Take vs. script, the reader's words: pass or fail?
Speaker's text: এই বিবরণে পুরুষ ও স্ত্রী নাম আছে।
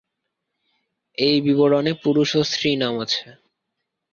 pass